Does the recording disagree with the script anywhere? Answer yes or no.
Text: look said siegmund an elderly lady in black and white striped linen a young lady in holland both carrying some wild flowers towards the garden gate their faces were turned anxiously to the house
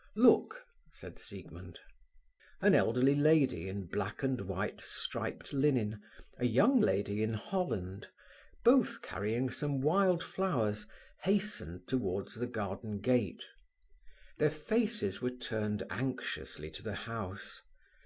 yes